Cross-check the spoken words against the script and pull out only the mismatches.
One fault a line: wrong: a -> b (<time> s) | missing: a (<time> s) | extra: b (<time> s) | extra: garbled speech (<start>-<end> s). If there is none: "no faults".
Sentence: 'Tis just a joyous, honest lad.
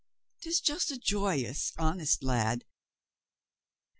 no faults